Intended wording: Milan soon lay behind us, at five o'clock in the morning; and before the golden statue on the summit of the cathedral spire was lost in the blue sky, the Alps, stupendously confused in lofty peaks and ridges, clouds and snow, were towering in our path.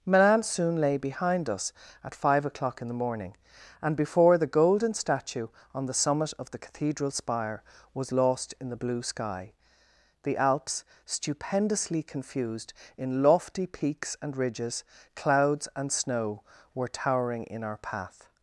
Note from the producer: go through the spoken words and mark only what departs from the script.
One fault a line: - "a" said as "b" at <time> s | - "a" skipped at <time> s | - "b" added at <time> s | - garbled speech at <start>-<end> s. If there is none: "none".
none